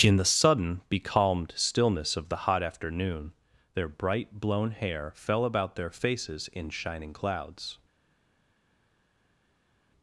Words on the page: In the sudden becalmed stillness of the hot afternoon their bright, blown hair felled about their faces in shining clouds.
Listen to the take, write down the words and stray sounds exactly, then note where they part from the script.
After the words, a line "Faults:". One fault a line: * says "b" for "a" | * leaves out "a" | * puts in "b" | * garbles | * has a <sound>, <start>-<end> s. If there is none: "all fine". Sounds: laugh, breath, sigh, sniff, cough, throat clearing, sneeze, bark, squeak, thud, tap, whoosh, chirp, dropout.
In the sudden becalmed stillness of the hot afternoon their bright, blown hair fell about their faces in shining clouds.
Faults:
* says "fell" for "felled"